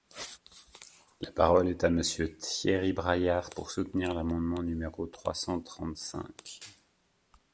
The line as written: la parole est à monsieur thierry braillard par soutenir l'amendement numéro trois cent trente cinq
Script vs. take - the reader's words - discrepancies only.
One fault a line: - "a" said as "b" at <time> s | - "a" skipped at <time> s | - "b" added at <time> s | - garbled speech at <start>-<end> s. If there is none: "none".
- "par" said as "pour" at 3.5 s